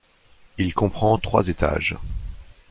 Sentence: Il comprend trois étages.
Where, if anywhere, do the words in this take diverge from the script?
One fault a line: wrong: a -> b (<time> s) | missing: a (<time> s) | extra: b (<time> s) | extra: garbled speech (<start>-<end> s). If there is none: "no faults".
no faults